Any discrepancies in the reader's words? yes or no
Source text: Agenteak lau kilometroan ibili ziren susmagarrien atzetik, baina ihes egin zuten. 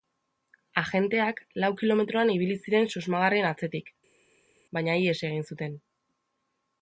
no